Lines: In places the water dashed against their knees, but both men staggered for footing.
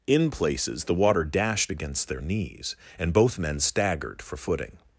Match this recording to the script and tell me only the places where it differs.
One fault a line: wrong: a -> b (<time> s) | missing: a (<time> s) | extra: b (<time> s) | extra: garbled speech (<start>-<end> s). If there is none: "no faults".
wrong: but -> and (3.0 s)